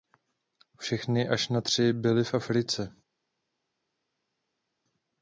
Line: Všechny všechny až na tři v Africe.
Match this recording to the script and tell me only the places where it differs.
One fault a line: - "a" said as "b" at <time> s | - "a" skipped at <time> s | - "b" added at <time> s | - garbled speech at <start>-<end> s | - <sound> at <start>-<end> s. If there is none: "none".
- "všechny" skipped at 1.3 s
- "byly" added at 1.9 s